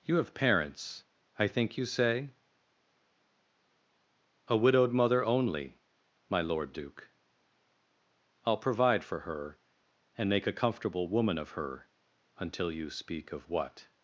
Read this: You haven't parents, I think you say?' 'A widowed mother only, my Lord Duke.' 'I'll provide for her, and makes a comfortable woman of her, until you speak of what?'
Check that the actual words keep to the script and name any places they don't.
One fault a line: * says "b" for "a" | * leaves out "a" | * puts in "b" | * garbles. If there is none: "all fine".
* says "have" for "haven't"
* says "make" for "makes"